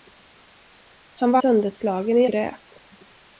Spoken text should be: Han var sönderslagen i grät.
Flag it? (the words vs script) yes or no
no